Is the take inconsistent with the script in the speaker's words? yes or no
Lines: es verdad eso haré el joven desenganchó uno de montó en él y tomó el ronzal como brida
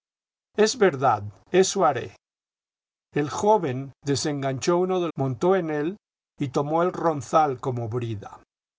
no